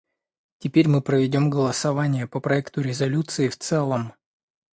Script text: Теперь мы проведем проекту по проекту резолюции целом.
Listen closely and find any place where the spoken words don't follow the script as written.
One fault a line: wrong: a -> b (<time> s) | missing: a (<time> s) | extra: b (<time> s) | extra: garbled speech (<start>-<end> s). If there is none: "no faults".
wrong: проекту -> голосование (1.5 s)
extra: в (3.5 s)